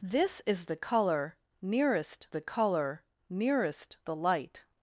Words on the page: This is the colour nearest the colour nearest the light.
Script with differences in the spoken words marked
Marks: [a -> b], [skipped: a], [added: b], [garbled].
This is the colour nearest the colour nearest the light.